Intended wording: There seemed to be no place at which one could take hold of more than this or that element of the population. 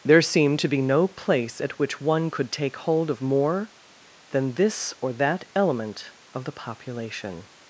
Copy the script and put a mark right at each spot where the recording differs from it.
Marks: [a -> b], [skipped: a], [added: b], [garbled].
There seemed to be no place at which one could take hold of more than this or that element of the population.